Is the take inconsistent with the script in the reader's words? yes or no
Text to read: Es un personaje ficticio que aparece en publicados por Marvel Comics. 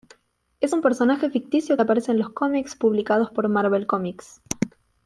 yes